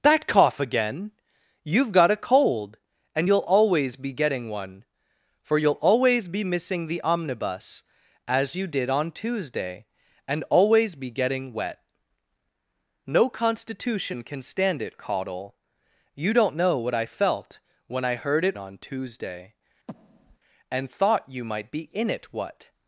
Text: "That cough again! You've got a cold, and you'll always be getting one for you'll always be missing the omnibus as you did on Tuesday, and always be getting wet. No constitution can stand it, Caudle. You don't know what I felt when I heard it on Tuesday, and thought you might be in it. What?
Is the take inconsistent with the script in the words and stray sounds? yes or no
yes